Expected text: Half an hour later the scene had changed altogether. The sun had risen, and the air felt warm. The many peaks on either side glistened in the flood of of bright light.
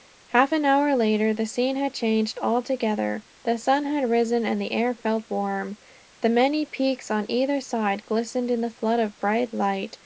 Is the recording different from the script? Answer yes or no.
yes